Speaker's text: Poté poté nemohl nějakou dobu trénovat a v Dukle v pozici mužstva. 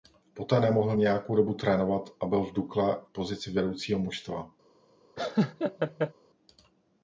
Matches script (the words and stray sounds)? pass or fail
fail